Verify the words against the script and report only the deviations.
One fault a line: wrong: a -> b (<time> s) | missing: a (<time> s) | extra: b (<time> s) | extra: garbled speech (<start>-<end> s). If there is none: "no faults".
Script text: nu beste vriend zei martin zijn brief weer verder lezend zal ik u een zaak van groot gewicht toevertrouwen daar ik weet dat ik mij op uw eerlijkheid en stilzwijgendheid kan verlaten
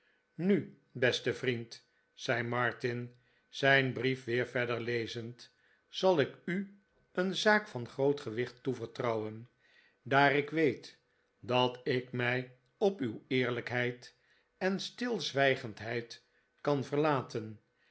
no faults